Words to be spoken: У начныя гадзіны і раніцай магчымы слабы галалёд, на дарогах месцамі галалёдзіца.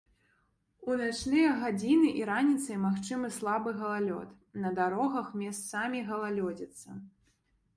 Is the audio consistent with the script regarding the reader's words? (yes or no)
yes